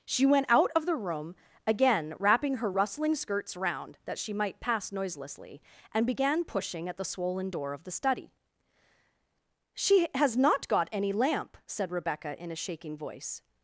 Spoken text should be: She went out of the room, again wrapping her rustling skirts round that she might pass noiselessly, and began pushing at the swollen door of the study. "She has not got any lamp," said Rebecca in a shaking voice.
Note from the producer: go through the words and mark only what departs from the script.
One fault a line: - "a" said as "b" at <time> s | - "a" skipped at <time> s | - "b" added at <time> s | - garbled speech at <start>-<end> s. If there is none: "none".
none